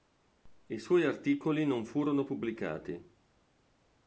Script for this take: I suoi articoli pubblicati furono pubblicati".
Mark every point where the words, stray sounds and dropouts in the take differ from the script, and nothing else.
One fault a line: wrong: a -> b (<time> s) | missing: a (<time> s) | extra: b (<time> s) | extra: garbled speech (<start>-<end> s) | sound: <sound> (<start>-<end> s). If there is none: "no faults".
wrong: pubblicati -> non (1.6 s)